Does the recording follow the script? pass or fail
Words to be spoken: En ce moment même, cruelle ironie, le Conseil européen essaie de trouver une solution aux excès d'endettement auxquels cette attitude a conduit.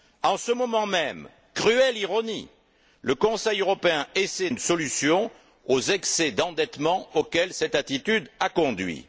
fail